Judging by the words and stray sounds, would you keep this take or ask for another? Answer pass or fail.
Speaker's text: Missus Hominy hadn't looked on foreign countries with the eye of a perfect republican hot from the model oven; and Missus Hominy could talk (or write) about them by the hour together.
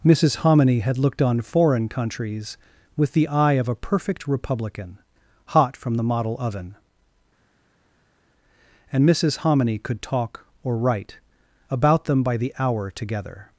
fail